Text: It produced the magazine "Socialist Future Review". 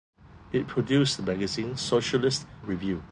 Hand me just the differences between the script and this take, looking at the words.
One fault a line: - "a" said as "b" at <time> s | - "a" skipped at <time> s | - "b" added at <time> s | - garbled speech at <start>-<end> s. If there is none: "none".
- "Future" skipped at 2.5 s